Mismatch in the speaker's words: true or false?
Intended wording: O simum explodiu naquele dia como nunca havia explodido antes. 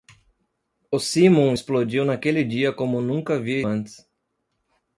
true